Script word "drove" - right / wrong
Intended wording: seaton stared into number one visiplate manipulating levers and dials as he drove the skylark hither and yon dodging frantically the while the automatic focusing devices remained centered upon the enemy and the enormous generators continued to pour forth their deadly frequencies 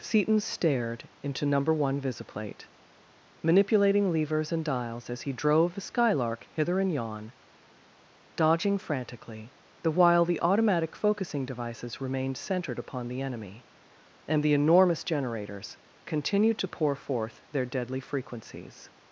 right